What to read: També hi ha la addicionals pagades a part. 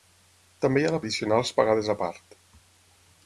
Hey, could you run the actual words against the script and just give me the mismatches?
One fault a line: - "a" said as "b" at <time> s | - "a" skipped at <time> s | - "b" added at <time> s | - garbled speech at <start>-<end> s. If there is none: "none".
none